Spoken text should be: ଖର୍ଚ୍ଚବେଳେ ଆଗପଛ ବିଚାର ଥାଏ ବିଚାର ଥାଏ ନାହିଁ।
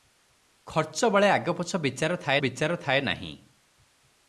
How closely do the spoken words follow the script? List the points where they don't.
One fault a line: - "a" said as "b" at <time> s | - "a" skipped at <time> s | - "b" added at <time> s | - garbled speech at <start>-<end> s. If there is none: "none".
none